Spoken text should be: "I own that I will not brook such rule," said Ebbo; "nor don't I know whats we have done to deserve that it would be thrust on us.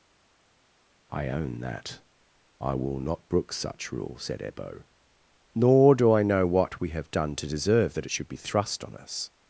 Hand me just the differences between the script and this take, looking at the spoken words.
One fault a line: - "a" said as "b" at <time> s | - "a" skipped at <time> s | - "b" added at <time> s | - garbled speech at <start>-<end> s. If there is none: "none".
- "don't" said as "do" at 5.9 s
- "whats" said as "what" at 6.5 s
- "would" said as "should" at 8.1 s